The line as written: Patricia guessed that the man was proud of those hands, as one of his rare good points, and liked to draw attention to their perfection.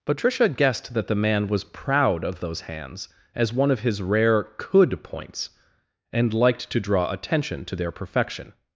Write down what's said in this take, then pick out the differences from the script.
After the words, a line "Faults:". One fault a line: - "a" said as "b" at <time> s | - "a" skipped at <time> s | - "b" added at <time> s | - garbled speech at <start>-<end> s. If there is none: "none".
Patricia guessed that the man was proud of those hands, as one of his rare could points, and liked to draw attention to their perfection.
Faults:
- "good" said as "could" at 4.6 s